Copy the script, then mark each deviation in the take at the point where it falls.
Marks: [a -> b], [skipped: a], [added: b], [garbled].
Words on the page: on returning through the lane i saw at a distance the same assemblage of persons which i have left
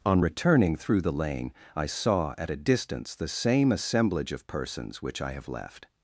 on returning through the lane i saw at a distance the same assemblage of persons which i have left